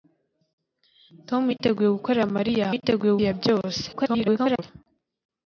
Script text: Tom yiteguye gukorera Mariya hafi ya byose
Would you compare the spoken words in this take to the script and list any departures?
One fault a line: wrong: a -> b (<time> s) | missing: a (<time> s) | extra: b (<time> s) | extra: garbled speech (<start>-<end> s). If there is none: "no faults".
wrong: hafi -> yiteguye (2.7 s)
extra: garbled speech (3.9-4.6 s)